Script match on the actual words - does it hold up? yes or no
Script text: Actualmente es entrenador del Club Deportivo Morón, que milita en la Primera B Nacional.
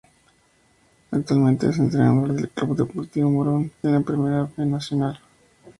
no